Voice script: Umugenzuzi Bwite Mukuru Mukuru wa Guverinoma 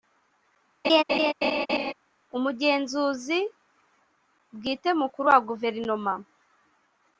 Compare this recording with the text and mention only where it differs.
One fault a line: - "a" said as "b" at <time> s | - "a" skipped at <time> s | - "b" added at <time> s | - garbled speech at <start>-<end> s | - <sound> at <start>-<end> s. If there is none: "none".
- laugh at 0.8-1.9 s
- "Mukuru" skipped at 5.3 s